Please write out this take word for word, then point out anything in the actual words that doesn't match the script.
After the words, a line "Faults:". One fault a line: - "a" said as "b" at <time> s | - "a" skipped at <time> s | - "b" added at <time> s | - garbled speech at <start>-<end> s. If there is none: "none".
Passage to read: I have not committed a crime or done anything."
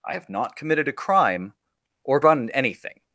I have not committed a crime or done anything."
Faults:
none